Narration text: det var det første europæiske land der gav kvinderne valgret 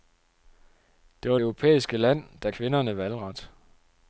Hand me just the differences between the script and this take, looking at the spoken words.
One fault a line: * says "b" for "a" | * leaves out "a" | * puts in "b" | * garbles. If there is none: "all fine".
* leaves out "det første"
* leaves out "gav"